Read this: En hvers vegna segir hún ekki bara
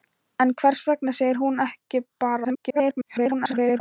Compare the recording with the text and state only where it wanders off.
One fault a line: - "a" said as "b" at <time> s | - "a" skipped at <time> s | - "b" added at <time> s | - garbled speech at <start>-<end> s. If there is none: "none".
- garbled speech at 2.4-3.8 s